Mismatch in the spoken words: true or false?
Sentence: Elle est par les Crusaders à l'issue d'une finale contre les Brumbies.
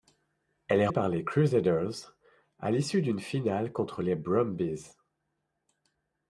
false